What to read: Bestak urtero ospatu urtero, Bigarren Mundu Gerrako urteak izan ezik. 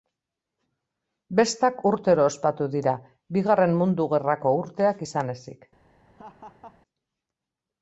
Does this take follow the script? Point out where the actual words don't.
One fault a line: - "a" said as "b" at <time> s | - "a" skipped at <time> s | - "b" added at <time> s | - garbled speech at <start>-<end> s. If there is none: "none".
- "urtero" said as "dira" at 2.7 s